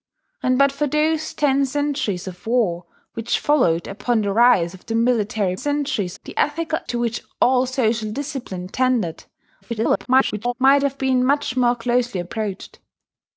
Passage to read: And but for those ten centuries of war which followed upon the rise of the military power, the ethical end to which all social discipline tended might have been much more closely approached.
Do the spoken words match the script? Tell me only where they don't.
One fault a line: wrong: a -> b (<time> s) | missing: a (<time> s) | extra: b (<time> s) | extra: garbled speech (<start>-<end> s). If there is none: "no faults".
wrong: power -> centuries (5.5 s)
missing: end (6.8 s)
extra: garbled speech (9.6-10.5 s)